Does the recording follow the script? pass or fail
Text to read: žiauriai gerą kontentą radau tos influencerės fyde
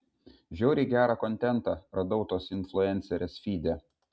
pass